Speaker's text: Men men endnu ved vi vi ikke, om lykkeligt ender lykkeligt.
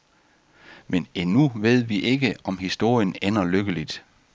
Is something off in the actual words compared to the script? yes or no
yes